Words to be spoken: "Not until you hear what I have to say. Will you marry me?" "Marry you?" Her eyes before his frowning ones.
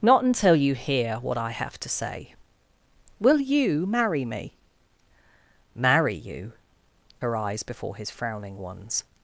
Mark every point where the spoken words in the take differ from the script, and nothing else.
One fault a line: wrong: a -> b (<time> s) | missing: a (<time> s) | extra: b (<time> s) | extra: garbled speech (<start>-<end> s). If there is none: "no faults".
no faults